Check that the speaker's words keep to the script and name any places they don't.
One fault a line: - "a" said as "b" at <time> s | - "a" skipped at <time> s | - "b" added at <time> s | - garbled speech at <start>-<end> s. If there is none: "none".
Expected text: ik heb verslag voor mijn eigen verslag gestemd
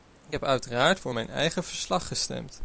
- "verslag" said as "uiteraard" at 0.4 s